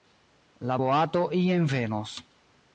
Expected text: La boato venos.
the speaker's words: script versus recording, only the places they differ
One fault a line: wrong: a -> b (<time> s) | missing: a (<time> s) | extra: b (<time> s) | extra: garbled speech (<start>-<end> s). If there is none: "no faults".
extra: ien (1.4 s)